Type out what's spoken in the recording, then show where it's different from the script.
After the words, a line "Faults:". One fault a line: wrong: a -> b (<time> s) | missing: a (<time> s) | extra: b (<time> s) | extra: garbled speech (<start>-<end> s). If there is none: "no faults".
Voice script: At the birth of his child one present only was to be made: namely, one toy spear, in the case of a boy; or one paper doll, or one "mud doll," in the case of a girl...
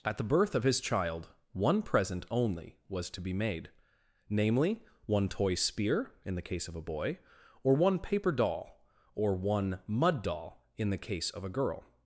At the birth of his child one present only was to be made: namely, one toy spear, in the case of a boy; or one paper doll, or one "mud doll," in the case of a girl...
Faults:
no faults